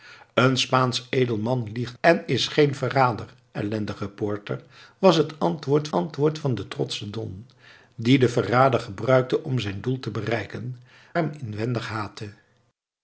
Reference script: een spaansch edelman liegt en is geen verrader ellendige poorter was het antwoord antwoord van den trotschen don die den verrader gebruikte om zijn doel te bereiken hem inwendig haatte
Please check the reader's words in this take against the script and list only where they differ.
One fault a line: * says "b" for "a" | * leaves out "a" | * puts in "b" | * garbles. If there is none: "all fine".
all fine